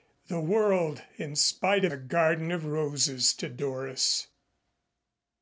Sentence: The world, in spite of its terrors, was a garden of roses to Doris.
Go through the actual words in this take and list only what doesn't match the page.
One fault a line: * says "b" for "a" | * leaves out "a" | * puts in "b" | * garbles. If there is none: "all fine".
* leaves out "its terrors was"